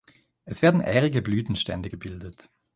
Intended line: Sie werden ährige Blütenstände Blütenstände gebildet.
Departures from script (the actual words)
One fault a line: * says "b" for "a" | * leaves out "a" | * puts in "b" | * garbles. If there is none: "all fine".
* says "Es" for "Sie"
* leaves out "Blütenstände"